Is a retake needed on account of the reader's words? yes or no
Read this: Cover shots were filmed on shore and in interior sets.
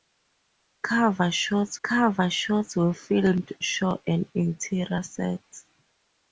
yes